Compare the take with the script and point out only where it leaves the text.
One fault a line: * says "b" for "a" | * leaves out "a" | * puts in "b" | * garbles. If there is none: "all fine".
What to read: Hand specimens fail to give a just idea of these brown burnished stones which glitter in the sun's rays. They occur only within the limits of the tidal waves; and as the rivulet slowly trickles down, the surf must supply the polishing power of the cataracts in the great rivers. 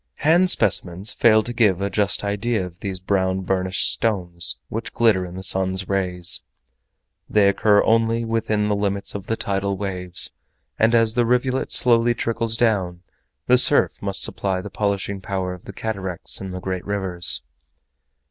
all fine